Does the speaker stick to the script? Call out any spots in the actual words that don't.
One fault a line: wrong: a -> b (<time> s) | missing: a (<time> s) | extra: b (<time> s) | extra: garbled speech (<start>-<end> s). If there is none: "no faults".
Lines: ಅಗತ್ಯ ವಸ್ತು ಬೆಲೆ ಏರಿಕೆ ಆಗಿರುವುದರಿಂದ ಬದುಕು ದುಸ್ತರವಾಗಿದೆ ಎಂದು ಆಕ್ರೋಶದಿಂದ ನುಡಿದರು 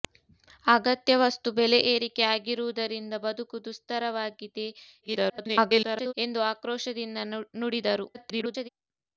extra: garbled speech (5.0-6.1 s)
extra: garbled speech (8.1-8.7 s)